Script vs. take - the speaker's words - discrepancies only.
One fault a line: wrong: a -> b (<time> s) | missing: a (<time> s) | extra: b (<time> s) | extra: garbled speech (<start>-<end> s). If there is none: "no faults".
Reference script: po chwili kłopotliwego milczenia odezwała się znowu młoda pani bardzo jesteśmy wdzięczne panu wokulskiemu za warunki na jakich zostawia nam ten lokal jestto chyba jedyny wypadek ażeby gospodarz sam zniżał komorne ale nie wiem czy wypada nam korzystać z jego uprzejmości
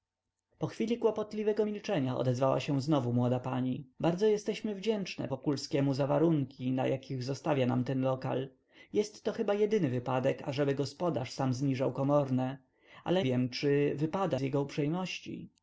missing: panu (5.3 s)
missing: nie (13.2 s)
missing: nam korzystać (14.4 s)